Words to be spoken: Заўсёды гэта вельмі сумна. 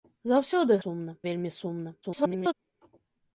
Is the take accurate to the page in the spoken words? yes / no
no